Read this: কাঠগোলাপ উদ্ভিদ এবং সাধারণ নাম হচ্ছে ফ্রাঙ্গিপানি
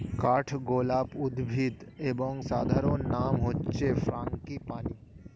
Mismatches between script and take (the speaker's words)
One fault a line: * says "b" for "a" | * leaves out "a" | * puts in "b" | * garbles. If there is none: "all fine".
all fine